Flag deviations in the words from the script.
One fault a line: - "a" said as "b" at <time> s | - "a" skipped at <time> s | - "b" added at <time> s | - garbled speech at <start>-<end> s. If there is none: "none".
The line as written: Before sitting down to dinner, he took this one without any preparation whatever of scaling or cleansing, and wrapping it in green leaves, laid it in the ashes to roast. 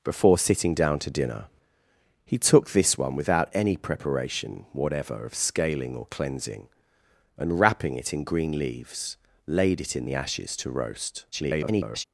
- garbled speech at 11.3-12.0 s